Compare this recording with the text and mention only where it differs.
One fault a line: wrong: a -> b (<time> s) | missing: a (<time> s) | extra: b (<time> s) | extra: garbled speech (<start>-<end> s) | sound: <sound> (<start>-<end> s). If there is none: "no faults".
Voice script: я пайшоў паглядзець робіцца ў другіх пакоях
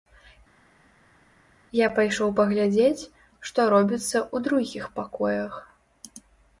extra: што (3.5 s)